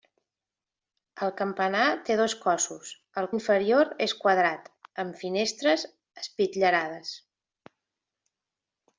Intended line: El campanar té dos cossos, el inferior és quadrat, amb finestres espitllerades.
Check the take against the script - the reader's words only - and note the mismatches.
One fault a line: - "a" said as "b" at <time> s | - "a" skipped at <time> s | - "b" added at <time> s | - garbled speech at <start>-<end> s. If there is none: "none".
none